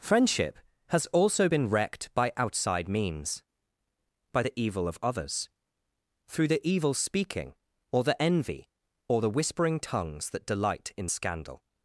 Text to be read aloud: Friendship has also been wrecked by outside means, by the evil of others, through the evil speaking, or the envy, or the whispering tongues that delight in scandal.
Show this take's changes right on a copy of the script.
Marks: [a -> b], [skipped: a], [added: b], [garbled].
Friendship has also been wrecked by outside means, by the evil of others, through the evil speaking, or the envy, or the whispering tongues that delight in scandal.